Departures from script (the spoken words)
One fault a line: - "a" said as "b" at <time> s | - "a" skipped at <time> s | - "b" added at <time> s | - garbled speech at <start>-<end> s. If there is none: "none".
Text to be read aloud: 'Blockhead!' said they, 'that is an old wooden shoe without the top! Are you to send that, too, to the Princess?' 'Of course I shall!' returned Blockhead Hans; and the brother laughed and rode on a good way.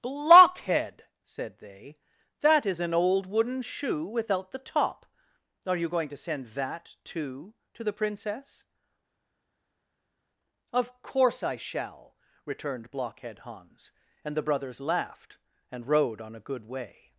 - "going" added at 5.9 s
- "brother" said as "brothers" at 14.5 s